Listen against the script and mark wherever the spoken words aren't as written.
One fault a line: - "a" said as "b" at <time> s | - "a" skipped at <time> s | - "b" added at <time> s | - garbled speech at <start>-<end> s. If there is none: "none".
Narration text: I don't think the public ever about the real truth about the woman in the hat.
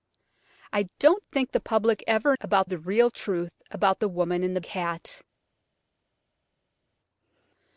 none